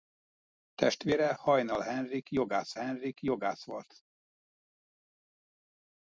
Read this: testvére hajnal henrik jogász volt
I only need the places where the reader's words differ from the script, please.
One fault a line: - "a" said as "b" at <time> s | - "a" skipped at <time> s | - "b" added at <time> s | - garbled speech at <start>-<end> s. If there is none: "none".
- "henrik jogász" added at 2.7 s